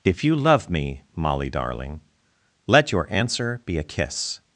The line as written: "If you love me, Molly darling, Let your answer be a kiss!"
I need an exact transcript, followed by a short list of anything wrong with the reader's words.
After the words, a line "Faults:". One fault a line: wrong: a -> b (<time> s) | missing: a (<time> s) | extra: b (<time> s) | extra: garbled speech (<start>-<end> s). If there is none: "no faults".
"If you love me, Molly darling, Let your answer be a kiss!"
Faults:
no faults